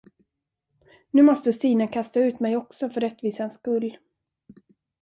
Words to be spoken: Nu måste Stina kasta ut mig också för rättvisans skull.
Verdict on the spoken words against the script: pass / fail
pass